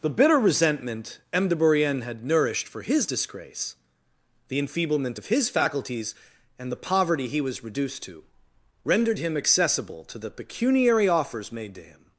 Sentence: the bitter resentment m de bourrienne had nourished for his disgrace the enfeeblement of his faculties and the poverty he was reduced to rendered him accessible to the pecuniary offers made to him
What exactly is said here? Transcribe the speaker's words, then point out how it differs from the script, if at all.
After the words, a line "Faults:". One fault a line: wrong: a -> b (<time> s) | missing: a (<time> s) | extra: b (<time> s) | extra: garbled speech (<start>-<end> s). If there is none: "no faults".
the bitter resentment m de bourrienne had nourished for his disgrace the enfeeblement of his faculties and the poverty he was reduced to rendered him accessible to the pecuniary offers made to him
Faults:
no faults